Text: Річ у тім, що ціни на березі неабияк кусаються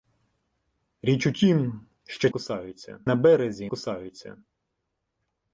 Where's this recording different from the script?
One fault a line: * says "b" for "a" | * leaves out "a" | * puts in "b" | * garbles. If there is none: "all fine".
* says "кусаються" for "ціни"
* leaves out "неабияк"